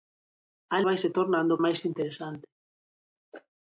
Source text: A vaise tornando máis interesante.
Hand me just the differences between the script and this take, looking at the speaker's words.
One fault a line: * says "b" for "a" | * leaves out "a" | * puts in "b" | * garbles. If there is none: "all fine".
all fine